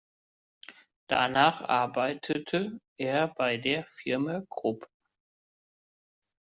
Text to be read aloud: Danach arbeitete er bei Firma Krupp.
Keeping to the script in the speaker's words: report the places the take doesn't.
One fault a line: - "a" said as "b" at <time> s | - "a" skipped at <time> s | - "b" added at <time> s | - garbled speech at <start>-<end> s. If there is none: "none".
- "der" added at 3.6 s